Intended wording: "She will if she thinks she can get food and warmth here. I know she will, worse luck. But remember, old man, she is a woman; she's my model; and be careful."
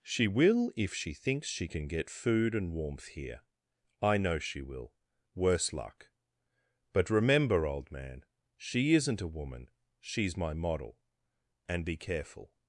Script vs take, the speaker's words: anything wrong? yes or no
yes